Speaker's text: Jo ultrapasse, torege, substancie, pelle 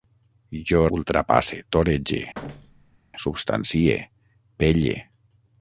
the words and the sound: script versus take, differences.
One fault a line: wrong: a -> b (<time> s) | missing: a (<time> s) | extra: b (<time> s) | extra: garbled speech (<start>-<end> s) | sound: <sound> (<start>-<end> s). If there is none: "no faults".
sound: thud (2.3-3.0 s)